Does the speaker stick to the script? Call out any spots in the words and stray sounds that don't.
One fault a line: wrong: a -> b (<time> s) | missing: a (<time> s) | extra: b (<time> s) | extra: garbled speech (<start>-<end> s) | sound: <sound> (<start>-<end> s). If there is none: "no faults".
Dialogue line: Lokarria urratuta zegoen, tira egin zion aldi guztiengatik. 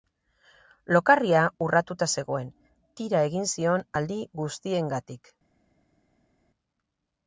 no faults